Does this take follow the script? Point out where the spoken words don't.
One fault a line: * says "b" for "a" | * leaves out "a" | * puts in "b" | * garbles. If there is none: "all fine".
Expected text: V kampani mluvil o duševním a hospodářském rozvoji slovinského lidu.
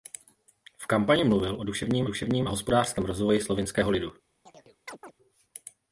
* puts in "duševním"